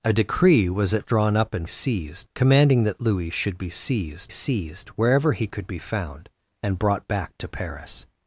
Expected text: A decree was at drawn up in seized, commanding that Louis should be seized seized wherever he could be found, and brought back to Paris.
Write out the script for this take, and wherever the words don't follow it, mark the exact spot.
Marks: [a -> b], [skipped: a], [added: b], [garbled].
A decree was at drawn up in seized, commanding that Louis should be seized seized wherever he could be found, and brought back to Paris.